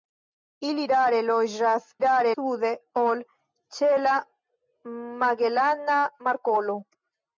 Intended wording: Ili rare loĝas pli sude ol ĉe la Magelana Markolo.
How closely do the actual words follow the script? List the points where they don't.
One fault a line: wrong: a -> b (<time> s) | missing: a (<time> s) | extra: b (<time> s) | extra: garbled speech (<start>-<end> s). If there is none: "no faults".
wrong: pli -> rare (2.0 s)